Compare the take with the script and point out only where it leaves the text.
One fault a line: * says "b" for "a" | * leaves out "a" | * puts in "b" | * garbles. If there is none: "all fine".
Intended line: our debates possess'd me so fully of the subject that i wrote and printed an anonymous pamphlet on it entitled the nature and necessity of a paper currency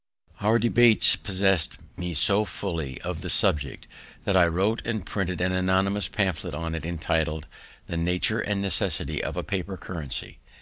all fine